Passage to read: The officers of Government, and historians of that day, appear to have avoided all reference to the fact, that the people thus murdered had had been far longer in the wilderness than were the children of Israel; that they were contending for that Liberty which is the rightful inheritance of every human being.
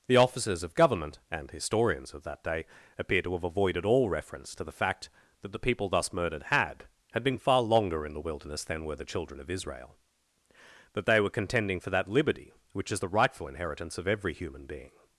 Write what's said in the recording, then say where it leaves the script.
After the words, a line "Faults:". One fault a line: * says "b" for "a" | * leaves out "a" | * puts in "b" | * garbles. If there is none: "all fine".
The officers of Government, and historians of that day, appear to have avoided all reference to the fact, that the people thus murdered had had been far longer in the wilderness than were the children of Israel; that they were contending for that Liberty which is the rightful inheritance of every human being.
Faults:
all fine